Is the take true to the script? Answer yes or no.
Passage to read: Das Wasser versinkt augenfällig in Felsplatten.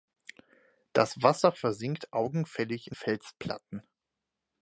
yes